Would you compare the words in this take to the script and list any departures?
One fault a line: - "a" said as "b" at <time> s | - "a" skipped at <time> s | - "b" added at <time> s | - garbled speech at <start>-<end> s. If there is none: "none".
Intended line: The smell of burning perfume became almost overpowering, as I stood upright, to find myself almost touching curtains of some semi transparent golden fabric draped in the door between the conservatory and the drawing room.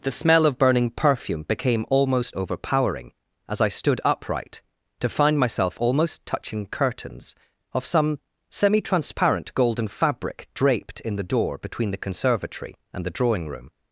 none